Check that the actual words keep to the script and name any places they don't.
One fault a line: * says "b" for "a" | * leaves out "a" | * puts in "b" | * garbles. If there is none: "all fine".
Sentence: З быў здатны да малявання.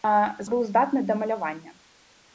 all fine